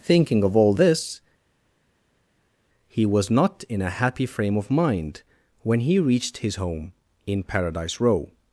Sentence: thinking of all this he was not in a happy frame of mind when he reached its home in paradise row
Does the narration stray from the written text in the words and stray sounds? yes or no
yes